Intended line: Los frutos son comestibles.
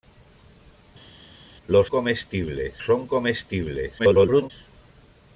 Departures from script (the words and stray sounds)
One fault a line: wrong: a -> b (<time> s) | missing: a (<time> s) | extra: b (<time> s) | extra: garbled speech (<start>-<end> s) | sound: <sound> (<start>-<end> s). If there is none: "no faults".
wrong: frutos -> comestibles (1.9 s)
extra: garbled speech (4.0-4.5 s)